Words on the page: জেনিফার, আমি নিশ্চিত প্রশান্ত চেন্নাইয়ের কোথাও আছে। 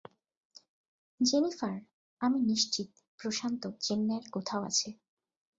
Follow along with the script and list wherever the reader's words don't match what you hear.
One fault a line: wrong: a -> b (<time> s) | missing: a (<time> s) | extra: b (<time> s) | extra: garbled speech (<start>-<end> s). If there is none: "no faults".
no faults